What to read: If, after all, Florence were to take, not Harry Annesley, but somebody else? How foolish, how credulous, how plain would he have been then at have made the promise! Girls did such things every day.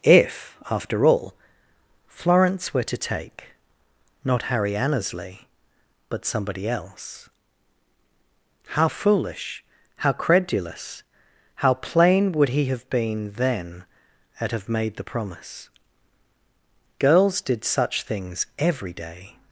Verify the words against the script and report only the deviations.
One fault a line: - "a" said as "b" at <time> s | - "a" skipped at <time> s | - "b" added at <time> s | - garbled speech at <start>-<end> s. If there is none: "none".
none